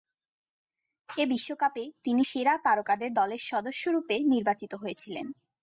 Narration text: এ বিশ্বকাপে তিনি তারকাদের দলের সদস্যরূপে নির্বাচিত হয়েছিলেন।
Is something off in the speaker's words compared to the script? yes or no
yes